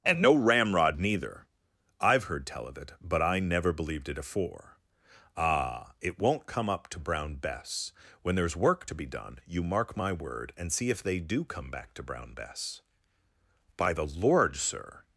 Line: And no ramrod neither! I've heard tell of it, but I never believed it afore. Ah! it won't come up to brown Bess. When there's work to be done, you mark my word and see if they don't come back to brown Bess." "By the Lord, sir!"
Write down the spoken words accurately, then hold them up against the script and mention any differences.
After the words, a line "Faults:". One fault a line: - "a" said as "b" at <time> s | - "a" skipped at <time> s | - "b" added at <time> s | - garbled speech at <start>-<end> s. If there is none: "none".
And no ramrod neither! I've heard tell of it, but I never believed it afore. Ah! it won't come up to brown Bess. When there's work to be done, you mark my word and see if they do come back to brown Bess." "By the Lord, sir!"
Faults:
- "don't" said as "do" at 11.2 s